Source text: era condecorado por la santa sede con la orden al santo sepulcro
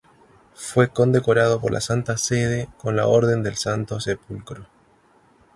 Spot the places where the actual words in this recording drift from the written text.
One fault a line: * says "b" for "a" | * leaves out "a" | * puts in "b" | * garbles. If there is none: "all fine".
* says "fue" for "era"
* says "del" for "al"